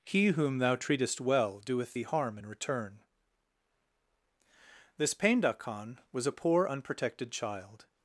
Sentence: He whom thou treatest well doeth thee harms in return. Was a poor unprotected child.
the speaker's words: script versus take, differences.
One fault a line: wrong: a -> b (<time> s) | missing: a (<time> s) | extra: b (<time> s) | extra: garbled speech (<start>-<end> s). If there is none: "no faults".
wrong: harms -> harm (2.0 s)
extra: This Painda Khan (5.0 s)